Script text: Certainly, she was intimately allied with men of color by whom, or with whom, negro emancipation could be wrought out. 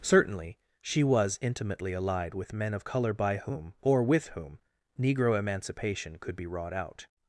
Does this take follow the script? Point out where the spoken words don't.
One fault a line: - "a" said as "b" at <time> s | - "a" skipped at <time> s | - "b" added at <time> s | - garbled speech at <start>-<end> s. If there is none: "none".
none